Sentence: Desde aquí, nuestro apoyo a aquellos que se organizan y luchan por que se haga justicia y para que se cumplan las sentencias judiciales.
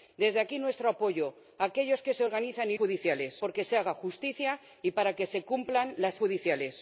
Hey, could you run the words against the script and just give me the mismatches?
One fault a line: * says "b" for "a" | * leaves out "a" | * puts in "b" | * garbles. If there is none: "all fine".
* says "judiciales" for "luchan"
* leaves out "sentencias"